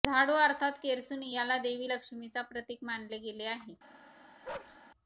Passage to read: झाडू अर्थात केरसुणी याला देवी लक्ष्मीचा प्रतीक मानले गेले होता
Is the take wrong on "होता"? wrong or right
wrong